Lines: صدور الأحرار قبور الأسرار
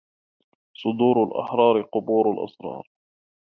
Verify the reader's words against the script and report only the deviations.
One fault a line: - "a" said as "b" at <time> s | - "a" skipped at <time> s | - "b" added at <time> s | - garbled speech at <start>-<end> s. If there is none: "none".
none